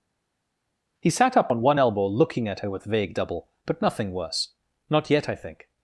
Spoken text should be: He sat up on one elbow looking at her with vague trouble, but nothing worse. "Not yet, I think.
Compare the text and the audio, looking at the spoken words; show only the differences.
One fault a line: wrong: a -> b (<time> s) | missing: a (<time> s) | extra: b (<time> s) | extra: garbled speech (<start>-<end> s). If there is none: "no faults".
wrong: trouble -> double (3.1 s)